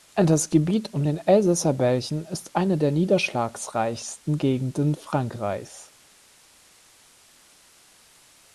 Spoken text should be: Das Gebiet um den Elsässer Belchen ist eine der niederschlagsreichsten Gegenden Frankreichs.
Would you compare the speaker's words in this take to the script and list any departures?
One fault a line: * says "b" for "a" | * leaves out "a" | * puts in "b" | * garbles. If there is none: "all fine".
all fine